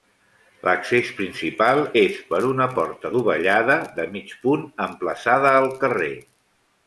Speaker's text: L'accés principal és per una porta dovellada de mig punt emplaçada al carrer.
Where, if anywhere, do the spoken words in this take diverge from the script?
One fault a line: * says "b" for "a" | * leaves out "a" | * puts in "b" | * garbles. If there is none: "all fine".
all fine